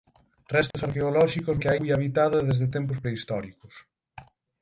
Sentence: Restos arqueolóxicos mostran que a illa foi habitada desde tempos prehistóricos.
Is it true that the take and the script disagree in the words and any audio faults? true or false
true